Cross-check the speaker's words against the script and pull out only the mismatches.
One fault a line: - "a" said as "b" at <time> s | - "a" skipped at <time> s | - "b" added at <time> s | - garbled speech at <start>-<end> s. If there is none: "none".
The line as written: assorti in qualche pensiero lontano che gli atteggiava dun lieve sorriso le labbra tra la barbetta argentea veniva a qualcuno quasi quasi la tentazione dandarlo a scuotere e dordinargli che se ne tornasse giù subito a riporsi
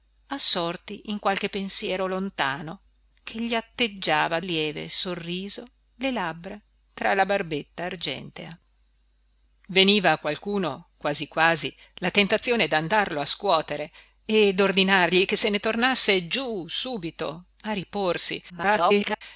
- "dun" skipped at 4.4 s
- garbled speech at 18.5-19.2 s